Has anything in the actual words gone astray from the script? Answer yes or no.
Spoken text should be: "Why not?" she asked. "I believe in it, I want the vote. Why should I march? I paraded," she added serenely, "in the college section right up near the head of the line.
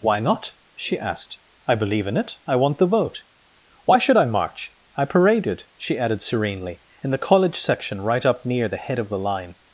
no